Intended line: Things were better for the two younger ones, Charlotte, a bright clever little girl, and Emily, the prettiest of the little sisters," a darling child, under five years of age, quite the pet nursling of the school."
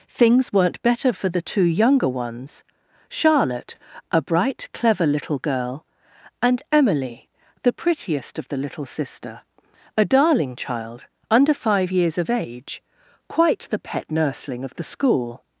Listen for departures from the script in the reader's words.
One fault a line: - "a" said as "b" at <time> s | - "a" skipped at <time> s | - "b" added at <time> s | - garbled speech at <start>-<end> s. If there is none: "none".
- "were" said as "weren't" at 0.5 s
- "sisters" said as "sister" at 8.8 s